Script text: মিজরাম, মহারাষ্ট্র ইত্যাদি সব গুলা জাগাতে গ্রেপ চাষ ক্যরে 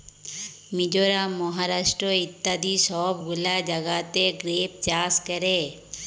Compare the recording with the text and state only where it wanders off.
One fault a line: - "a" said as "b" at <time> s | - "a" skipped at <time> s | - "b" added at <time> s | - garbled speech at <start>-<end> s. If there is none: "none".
none